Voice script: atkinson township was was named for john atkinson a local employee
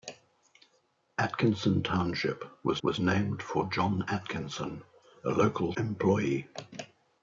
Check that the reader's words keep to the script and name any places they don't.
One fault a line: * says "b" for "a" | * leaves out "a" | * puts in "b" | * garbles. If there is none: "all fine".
all fine